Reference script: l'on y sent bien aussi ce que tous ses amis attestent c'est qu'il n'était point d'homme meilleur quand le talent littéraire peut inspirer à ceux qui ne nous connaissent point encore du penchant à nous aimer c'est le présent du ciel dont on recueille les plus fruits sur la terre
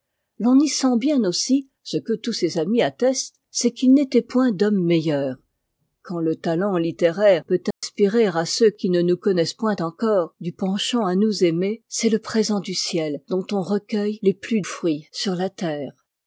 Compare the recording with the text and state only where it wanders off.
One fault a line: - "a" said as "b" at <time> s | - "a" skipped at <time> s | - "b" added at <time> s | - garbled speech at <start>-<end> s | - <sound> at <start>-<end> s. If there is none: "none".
- dropout at 7.7-7.8 s